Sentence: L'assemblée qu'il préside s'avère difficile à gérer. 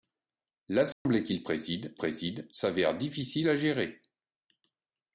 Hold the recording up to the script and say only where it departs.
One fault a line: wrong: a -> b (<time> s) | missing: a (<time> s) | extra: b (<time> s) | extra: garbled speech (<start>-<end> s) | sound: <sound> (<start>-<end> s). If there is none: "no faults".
sound: dropout (0.9-1.1 s)
extra: préside (2.0 s)